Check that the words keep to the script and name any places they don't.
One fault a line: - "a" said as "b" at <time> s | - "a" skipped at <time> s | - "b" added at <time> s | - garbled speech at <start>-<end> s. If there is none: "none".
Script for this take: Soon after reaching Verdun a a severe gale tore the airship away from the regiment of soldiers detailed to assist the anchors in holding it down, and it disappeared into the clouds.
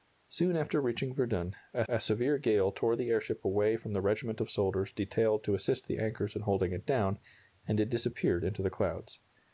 none